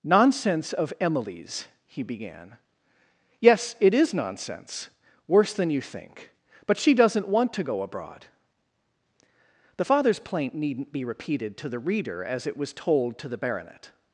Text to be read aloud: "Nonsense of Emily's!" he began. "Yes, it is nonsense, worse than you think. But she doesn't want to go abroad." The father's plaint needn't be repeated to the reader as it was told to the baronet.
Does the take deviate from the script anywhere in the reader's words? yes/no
no